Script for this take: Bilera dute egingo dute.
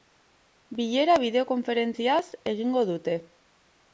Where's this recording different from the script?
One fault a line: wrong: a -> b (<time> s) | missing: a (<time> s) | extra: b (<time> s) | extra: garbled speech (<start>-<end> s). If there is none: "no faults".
wrong: dute -> bideokonferentziaz (1.2 s)